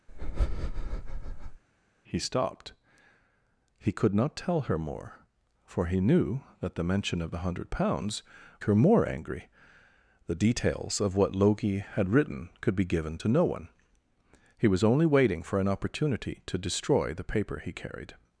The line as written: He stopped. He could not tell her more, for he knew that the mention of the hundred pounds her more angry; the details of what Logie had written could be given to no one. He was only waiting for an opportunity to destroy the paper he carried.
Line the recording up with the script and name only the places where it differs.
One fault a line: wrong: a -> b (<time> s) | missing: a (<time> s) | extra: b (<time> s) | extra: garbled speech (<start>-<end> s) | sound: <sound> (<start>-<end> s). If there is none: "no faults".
sound: breath (0.1-1.6 s)